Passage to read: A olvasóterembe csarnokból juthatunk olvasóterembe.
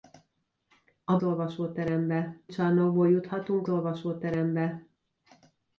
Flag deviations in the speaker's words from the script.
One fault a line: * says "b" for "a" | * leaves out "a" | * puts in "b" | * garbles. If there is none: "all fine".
all fine